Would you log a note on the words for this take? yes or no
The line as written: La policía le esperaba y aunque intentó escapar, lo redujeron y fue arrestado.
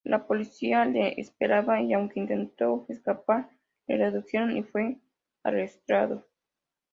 yes